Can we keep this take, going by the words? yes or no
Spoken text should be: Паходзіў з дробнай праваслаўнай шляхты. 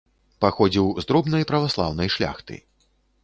yes